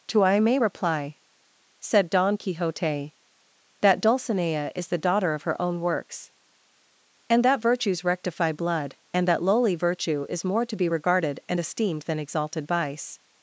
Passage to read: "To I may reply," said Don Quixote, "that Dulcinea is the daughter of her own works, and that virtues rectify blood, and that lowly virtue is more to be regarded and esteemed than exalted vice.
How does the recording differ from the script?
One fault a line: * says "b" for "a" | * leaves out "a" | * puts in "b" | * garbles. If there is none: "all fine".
all fine